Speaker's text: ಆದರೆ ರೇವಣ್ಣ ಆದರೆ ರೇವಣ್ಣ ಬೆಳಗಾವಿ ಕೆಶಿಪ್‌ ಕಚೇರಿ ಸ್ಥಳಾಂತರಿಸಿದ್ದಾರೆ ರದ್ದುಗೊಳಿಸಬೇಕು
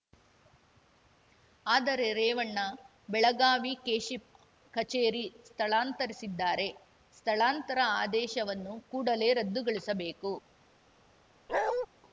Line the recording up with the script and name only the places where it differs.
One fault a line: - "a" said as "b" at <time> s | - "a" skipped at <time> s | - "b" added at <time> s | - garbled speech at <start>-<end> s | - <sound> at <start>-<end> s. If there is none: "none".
- "ಆದರೆ ರೇವಣ್ಣ" skipped at 2.6 s
- "ಸ್ಥಳಾಂತರ ಆದೇಶವನ್ನು ಕೂಡಲೇ" added at 7.2 s
- bark at 11.5-11.9 s